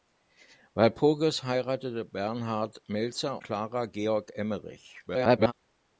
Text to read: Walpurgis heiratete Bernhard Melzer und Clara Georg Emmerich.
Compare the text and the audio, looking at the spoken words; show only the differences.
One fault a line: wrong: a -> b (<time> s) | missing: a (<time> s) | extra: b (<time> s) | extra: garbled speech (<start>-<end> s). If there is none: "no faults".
missing: und (3.4 s)
extra: garbled speech (5.1-5.5 s)